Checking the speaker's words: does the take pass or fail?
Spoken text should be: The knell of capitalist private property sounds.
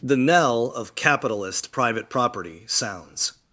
pass